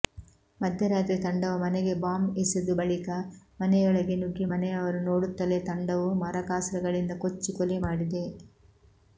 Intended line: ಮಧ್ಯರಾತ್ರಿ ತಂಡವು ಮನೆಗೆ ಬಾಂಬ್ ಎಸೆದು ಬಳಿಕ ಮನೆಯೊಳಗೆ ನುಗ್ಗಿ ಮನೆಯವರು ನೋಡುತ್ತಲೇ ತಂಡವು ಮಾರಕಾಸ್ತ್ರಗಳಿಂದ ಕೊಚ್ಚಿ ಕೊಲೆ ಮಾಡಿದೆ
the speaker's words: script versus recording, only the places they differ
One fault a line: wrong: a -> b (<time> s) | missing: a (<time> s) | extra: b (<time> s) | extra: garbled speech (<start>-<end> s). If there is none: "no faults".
no faults